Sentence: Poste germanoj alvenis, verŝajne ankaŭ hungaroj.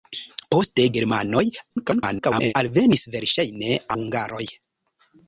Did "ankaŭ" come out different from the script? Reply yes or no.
yes